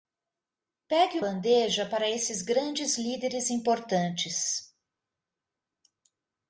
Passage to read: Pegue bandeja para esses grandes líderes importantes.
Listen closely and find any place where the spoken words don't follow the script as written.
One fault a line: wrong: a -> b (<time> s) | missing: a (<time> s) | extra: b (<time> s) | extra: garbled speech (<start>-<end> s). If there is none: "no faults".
no faults